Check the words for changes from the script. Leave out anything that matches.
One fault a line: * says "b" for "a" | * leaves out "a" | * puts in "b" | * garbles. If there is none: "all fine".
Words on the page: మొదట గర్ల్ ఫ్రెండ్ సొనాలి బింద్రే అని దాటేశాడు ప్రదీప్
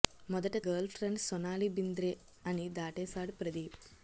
all fine